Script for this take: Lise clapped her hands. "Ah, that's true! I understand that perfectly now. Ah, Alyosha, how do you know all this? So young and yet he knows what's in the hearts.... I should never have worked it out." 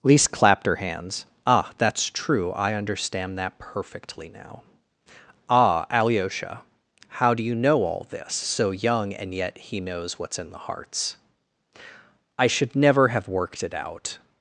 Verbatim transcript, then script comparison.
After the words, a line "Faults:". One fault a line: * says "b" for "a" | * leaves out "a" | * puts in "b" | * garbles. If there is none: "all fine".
Lise clapped her hands. "Ah, that's true! I understand that perfectly now. Ah, Alyosha, how do you know all this? So young and yet he knows what's in the hearts.... I should never have worked it out."
Faults:
all fine